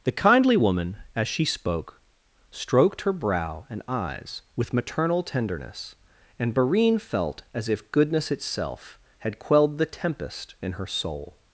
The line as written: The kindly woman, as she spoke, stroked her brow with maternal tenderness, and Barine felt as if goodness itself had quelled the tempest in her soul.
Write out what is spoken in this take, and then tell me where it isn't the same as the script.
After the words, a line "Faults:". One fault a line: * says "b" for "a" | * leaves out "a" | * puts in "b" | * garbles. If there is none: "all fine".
The kindly woman, as she spoke, stroked her brow and eyes with maternal tenderness, and Barine felt as if goodness itself had quelled the tempest in her soul.
Faults:
* puts in "and eyes"